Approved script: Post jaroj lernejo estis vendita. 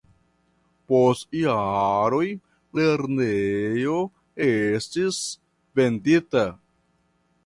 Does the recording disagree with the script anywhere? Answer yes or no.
no